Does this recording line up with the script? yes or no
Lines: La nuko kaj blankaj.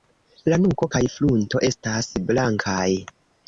no